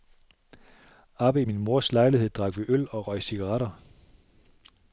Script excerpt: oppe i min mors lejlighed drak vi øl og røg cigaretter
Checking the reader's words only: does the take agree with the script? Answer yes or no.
yes